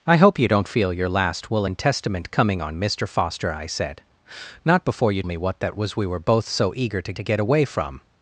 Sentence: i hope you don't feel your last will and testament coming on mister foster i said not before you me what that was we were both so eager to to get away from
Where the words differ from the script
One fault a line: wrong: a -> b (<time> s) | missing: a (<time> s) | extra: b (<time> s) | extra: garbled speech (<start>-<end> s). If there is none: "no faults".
no faults